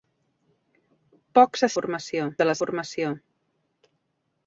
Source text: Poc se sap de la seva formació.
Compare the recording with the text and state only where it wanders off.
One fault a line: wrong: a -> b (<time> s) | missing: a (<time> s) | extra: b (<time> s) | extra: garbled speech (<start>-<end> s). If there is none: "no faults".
wrong: sap -> formació (1.8 s)
missing: seva (2.6 s)